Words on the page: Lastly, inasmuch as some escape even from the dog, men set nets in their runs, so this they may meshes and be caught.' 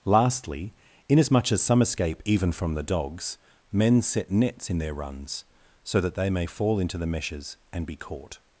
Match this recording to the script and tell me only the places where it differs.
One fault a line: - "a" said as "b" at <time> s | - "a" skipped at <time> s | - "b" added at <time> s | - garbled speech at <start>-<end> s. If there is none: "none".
- "dog" said as "dogs" at 2.8 s
- "this" said as "that" at 6.0 s
- "fall into the" added at 6.5 s